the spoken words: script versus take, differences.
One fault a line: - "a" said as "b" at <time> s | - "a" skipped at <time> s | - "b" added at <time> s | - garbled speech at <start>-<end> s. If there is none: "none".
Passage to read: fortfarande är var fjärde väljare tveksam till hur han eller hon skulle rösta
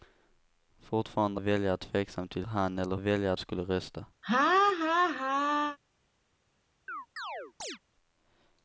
- "är var fjärde" skipped at 1.4 s
- "hur" skipped at 2.4 s
- "hon" said as "väljare" at 2.9 s